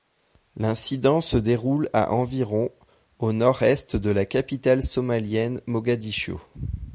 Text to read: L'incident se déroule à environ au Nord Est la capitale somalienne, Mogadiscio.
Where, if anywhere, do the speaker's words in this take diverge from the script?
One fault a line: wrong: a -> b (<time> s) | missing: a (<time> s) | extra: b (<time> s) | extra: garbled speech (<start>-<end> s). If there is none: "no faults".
extra: de (4.0 s)